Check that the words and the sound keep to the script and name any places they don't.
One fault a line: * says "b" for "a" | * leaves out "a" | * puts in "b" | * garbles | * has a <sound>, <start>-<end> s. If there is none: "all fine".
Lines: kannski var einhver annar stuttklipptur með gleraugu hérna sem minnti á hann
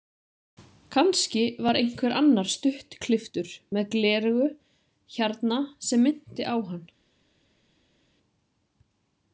all fine